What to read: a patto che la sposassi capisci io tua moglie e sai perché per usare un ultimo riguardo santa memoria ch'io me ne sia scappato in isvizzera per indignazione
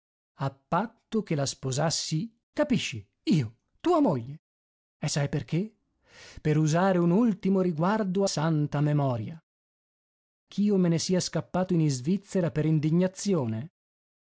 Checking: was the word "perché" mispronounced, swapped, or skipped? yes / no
no